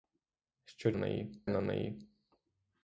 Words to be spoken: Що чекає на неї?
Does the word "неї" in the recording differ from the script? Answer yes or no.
no